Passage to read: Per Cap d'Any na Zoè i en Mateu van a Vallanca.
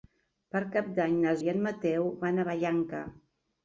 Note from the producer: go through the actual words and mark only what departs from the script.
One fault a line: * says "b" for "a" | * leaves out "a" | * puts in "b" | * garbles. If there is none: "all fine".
* leaves out "Zoè"